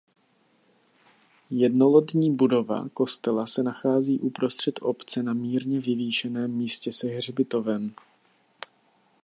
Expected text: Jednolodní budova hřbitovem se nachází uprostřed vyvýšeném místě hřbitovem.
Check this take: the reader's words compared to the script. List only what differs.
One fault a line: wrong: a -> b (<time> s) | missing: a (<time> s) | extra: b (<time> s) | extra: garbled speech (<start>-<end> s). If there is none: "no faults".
wrong: hřbitovem -> kostela (2.9 s)
extra: obce na mírně (4.8 s)
extra: se (6.9 s)